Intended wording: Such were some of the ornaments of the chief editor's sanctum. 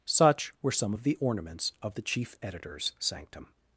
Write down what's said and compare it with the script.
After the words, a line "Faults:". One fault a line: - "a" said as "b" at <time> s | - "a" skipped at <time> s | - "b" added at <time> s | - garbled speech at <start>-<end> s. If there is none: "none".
Such were some of the ornaments of the chief editor's sanctum.
Faults:
none